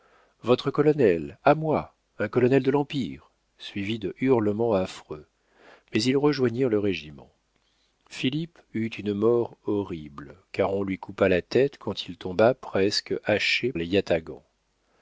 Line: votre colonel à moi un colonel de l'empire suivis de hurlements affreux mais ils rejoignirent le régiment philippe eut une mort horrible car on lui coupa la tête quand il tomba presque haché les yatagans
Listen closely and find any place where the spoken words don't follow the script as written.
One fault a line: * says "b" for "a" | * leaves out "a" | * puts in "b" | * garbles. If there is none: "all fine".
all fine